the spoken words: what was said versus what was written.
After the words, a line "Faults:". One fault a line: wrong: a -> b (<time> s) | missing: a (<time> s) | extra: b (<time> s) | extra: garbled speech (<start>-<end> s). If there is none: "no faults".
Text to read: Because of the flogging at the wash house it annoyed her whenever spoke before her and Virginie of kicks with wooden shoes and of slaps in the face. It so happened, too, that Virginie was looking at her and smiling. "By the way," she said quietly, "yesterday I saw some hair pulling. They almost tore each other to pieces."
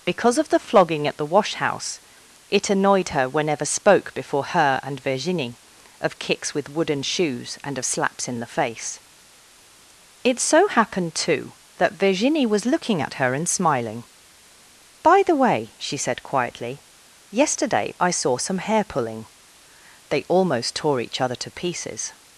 Because of the flogging at the wash house it annoyed her whenever spoke before her and Virginie of kicks with wooden shoes and of slaps in the face. It so happened, too, that Virginie was looking at her and smiling. "By the way," she said quietly, "yesterday I saw some hair pulling. They almost tore each other to pieces."
Faults:
no faults